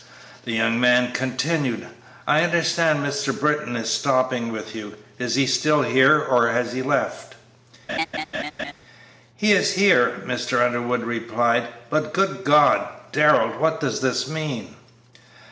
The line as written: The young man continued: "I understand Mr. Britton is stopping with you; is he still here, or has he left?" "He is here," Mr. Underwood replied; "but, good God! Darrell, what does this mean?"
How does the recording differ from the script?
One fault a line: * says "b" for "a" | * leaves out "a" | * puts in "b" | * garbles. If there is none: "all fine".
all fine